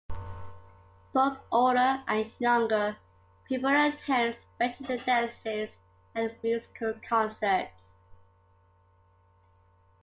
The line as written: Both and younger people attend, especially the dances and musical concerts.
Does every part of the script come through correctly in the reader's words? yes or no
no